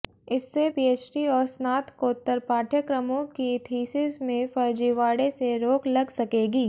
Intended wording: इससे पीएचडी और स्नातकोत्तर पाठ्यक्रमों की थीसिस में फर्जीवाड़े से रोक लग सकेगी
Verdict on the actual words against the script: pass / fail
pass